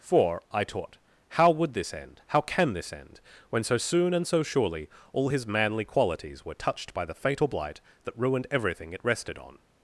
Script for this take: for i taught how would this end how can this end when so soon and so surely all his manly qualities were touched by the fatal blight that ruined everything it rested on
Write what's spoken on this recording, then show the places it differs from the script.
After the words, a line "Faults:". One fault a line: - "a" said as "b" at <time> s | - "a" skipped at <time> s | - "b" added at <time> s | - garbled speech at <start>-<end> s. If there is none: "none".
for i taught how would this end how can this end when so soon and so surely all his manly qualities were touched by the fatal blight that ruined everything it rested on
Faults:
none